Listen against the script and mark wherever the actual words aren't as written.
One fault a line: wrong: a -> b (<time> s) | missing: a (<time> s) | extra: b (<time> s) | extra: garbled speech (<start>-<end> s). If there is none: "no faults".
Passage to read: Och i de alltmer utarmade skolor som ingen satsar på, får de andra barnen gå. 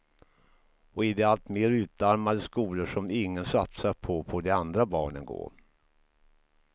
no faults